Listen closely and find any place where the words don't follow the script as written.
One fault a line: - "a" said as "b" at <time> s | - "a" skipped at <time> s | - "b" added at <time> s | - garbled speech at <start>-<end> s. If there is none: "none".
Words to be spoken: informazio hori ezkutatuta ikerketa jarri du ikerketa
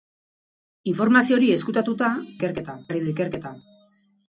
none